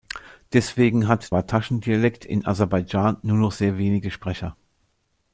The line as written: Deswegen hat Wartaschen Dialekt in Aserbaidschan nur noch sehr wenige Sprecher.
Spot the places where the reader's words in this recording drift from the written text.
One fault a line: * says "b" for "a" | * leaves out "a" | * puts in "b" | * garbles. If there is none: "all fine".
all fine